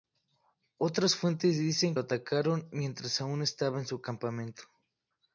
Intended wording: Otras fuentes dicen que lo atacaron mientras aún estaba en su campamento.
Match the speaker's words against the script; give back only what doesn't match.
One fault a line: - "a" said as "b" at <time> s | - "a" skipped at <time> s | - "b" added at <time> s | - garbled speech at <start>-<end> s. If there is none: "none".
- "que" skipped at 1.9 s